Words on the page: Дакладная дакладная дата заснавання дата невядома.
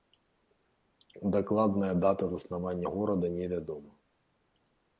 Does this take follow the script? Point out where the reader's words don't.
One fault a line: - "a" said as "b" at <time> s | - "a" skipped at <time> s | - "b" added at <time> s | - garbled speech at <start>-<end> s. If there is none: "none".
- "дакладная" skipped at 1.9 s
- "дата" said as "горада" at 2.8 s